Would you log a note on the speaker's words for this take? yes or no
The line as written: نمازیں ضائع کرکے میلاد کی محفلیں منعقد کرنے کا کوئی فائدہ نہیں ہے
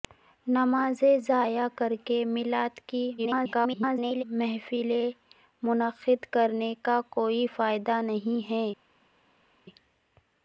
yes